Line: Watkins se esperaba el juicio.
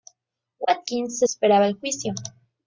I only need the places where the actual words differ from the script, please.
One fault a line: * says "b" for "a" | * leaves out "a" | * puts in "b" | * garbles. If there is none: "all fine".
all fine